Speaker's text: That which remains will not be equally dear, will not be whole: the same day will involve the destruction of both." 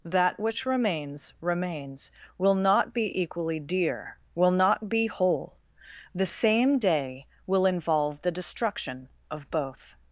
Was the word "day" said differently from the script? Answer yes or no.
no